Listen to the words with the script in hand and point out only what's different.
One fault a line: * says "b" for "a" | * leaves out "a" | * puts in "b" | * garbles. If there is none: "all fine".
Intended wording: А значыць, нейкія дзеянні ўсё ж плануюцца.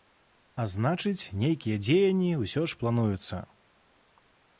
all fine